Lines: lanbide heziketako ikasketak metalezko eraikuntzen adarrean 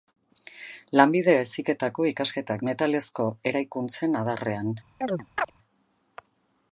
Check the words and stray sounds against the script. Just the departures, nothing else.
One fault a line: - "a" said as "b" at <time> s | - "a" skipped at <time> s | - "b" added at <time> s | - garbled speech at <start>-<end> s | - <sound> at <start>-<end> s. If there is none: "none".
- chirp at 5.0-5.5 s